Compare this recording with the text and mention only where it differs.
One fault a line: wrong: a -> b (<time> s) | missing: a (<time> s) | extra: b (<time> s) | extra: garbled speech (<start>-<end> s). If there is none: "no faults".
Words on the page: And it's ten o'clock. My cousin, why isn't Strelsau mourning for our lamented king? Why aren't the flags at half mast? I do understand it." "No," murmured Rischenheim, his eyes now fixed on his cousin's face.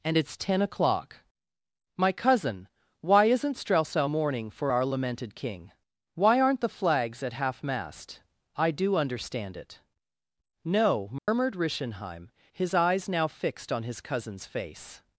no faults